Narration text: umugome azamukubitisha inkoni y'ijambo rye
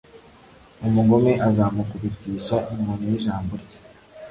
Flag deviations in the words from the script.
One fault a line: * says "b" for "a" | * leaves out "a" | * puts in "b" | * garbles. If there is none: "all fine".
all fine